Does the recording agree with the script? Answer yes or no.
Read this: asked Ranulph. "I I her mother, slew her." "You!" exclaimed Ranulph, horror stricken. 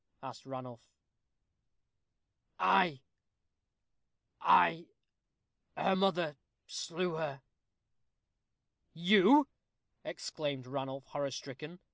yes